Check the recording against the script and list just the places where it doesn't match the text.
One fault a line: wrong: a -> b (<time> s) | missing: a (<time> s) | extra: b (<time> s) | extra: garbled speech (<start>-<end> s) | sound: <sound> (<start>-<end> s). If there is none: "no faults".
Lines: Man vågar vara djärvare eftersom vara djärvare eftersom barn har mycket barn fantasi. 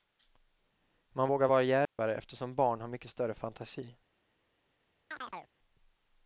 sound: dropout (1.8-2.0 s)
missing: vara djärvare eftersom (2.6 s)
wrong: barn -> större (3.1 s)
sound: chirp (5.1-5.5 s)